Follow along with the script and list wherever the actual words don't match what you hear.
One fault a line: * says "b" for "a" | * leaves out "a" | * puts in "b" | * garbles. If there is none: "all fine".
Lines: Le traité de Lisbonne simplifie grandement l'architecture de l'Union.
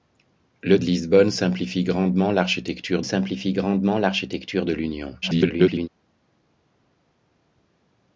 * leaves out "traité"
* puts in "simplifie grandement l'architecture"
* garbles